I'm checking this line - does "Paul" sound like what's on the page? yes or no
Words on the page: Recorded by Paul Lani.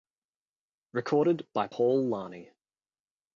yes